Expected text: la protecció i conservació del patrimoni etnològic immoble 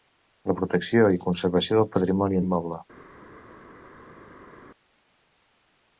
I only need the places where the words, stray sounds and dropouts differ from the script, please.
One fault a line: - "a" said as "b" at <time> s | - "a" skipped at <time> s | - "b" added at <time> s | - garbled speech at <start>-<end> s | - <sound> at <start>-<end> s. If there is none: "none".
- "etnològic" skipped at 2.4 s